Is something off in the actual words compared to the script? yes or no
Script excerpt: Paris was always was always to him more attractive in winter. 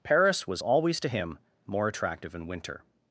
yes